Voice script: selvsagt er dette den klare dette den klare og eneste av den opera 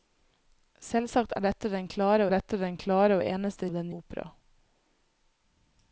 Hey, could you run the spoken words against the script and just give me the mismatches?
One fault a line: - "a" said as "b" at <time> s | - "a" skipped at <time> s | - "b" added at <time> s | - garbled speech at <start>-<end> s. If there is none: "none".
none